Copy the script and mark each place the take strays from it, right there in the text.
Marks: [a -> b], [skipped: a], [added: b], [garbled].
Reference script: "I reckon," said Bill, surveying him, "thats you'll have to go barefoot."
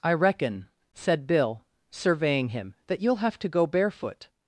"I reckon," said Bill, surveying him, ["thats -> that] you'll have to go barefoot."